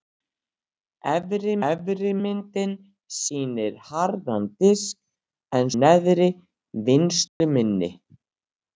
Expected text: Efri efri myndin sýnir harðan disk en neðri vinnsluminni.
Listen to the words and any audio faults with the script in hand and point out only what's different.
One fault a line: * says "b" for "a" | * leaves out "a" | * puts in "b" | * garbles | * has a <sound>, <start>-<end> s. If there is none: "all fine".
* has a dropout, 7.3-7.4 s